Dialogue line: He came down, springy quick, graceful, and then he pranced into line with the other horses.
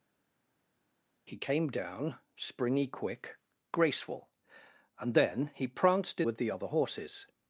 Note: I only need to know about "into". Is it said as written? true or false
false